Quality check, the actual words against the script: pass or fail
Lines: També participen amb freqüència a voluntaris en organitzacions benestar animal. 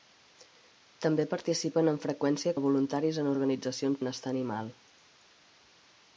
pass